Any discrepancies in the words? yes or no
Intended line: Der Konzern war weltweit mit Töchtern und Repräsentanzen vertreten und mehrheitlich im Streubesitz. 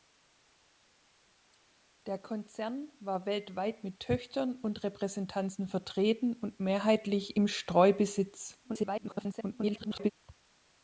yes